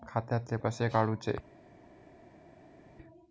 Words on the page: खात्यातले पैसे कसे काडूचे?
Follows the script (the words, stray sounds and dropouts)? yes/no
no